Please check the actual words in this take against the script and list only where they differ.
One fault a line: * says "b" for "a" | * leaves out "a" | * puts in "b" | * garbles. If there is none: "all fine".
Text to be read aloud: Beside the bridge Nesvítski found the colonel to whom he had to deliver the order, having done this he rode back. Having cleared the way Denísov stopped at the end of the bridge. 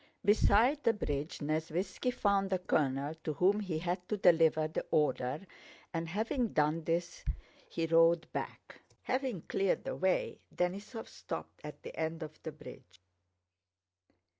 * puts in "and"